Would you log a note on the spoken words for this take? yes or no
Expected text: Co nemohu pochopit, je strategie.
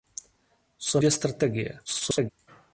yes